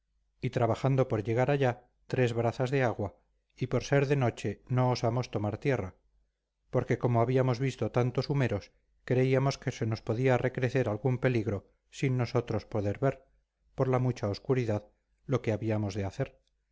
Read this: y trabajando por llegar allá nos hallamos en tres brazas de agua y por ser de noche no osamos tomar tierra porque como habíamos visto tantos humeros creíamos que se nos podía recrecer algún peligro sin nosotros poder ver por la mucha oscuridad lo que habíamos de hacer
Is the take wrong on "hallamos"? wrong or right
wrong